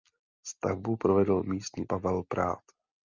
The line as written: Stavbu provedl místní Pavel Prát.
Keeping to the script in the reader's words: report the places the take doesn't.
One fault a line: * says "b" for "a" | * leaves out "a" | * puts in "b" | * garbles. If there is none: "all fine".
all fine